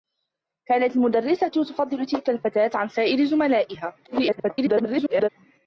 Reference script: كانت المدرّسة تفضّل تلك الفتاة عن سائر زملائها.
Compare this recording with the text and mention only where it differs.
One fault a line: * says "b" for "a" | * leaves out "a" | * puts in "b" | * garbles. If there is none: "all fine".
* garbles